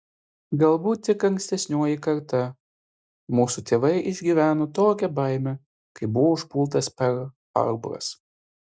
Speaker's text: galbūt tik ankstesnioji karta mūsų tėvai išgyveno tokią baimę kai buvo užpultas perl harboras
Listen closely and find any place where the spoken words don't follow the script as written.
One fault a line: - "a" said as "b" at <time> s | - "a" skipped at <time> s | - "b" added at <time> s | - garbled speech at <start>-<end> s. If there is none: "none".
none